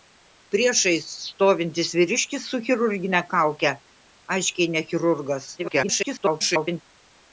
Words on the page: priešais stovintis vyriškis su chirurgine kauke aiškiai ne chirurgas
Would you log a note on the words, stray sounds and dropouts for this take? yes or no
yes